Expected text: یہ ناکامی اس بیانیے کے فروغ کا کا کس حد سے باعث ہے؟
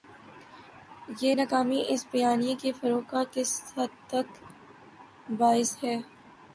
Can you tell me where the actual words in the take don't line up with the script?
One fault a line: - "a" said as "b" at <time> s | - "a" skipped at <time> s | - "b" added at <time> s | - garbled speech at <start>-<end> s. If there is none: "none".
- "کا" skipped at 3.2 s
- "سے" said as "تک" at 4.1 s